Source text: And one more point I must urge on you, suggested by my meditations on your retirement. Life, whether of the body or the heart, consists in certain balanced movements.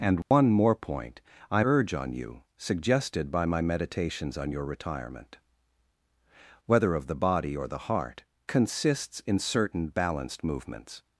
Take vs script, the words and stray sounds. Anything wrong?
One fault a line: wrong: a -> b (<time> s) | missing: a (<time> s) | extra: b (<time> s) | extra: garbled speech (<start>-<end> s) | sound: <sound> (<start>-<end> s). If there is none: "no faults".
sound: dropout (0.2-0.3 s)
missing: must (1.6 s)
missing: Life (5.4 s)